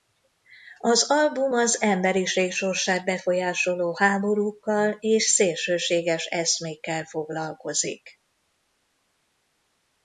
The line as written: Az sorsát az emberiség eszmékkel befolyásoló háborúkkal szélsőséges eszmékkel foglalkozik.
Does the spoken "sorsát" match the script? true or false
false